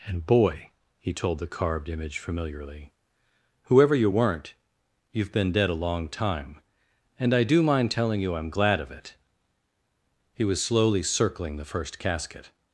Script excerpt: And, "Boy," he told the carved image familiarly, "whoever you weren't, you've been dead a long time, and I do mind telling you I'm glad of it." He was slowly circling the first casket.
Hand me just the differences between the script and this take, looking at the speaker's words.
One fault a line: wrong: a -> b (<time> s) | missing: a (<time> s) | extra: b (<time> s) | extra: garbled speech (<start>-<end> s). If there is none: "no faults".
no faults